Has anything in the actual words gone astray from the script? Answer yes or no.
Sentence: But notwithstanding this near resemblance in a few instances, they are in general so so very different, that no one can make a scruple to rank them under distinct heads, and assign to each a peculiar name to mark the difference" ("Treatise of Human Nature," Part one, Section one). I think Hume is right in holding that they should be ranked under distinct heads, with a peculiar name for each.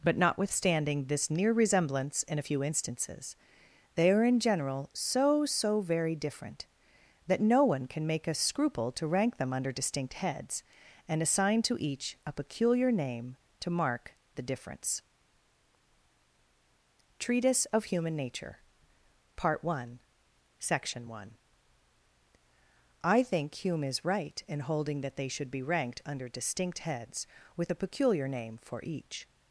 no